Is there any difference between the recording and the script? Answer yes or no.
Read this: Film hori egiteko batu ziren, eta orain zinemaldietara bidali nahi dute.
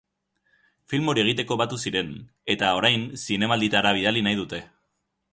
no